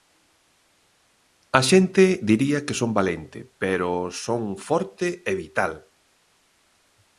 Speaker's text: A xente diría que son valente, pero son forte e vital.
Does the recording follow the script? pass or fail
pass